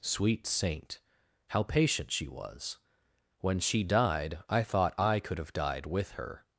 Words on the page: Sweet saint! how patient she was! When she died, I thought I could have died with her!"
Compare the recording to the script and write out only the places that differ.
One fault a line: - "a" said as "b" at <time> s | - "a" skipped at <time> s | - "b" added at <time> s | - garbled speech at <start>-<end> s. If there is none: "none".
none